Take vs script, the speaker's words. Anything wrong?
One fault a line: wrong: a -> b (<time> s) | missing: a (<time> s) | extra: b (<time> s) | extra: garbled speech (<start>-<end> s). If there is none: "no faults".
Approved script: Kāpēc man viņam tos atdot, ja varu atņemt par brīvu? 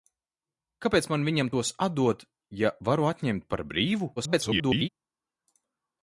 extra: garbled speech (4.2-4.9 s)